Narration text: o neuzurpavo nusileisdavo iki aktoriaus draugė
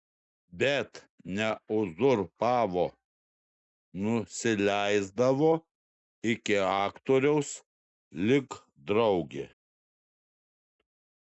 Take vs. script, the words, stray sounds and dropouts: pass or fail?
fail